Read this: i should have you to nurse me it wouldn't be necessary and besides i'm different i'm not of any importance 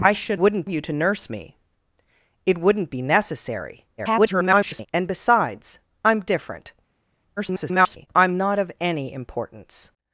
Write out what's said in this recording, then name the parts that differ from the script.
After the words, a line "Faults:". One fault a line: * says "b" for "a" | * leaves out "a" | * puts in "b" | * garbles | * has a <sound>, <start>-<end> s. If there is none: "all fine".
i should wouldn't you to nurse me it wouldn't be necessary [garbled] and besides i'm different [garbled] i'm not of any importance
Faults:
* says "wouldn't" for "have"
* garbles
* garbles